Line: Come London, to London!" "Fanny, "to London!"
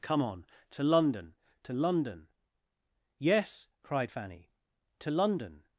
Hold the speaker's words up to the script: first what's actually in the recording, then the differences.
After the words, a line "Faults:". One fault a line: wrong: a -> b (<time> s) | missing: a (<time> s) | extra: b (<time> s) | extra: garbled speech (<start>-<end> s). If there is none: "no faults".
Come on, to London, to London!" "Yes," cried Fanny, "to London!"
Faults:
extra: on to (0.2 s)
extra: Yes cried (3.2 s)